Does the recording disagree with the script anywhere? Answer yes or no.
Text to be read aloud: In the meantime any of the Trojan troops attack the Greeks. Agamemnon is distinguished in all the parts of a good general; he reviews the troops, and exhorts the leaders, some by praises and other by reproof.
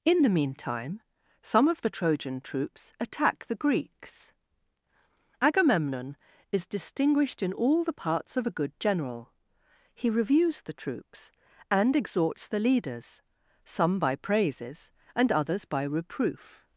yes